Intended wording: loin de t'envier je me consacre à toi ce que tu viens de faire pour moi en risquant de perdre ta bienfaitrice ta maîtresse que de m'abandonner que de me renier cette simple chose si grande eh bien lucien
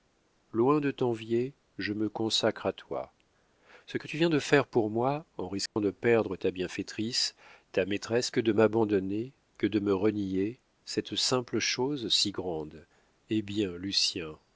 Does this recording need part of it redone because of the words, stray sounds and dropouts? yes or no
yes